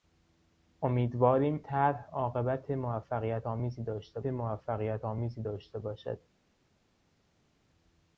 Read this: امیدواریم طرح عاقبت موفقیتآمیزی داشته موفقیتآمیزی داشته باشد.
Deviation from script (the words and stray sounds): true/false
false